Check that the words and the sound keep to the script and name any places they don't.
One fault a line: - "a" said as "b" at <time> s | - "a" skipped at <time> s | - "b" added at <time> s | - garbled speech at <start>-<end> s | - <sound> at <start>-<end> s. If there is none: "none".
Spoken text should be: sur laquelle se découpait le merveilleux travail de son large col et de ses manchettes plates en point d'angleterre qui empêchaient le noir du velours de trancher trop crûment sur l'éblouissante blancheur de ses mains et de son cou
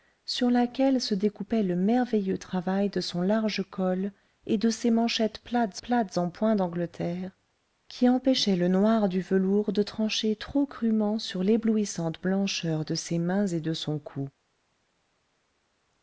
- "plates" added at 5.8 s